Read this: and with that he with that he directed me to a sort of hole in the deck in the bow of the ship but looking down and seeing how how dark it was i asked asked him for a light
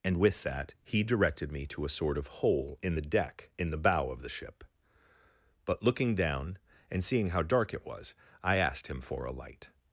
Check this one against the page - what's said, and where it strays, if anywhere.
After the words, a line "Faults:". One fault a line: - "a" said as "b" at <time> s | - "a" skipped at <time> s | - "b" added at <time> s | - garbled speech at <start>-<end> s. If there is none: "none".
and with that he directed me to a sort of hole in the deck in the bow of the ship but looking down and seeing how dark it was i asked him for a light
Faults:
- "with that he" skipped at 1.0 s
- "how" skipped at 7.4 s
- "asked" skipped at 8.9 s